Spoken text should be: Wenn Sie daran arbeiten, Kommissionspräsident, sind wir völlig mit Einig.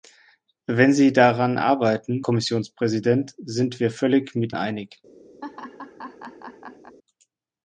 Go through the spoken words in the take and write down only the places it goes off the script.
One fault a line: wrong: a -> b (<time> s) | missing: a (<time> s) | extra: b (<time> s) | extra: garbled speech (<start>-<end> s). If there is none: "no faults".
no faults